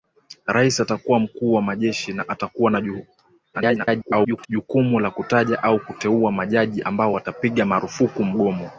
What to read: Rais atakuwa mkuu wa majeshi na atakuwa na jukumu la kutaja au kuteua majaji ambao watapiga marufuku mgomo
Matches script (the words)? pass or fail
fail